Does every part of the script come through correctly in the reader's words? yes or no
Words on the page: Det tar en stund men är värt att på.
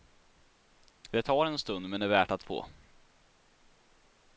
yes